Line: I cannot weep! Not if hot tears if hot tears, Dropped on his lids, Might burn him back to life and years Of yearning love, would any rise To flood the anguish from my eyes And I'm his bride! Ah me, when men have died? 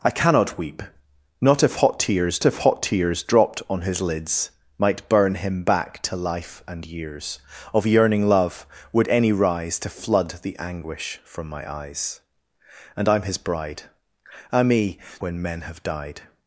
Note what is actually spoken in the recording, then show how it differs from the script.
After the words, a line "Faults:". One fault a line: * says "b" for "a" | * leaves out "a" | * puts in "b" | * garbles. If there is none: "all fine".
I cannot weep! Not if hot tears if hot tears, Dropped on his lids, Might burn him back to life and years Of yearning love, would any rise To flood the anguish from my eyes And I'm his bride! Ah me, when men have died?
Faults:
all fine